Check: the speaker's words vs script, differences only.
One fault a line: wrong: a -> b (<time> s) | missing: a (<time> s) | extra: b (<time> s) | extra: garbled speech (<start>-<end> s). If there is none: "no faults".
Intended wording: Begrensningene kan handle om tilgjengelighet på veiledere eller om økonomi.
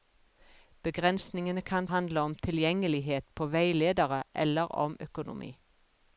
no faults